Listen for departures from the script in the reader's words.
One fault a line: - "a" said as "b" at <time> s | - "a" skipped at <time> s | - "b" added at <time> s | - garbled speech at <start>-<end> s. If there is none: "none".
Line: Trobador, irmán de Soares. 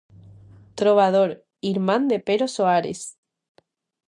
- "Pero" added at 2.2 s